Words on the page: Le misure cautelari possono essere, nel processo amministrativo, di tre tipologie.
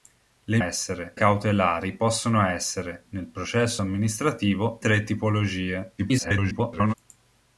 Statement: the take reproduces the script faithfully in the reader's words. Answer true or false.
false